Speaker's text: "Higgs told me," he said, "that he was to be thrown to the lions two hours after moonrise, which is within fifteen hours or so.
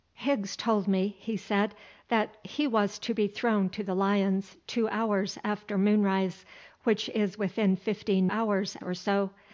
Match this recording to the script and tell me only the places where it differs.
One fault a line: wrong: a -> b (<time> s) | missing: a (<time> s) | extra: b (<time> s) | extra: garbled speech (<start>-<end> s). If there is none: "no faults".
no faults